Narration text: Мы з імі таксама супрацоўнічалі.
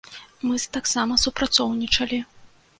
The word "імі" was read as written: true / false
false